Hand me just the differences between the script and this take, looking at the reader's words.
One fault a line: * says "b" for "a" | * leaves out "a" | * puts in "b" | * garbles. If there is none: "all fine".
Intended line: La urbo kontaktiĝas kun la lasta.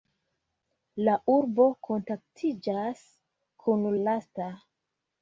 * leaves out "la"